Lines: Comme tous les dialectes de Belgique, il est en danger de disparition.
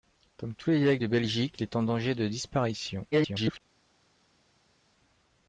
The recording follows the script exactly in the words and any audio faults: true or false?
false